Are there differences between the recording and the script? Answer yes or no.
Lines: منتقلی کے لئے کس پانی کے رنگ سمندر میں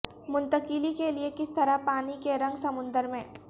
yes